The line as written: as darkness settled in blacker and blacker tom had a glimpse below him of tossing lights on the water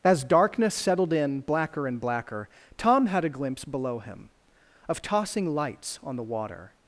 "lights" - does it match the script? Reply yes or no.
yes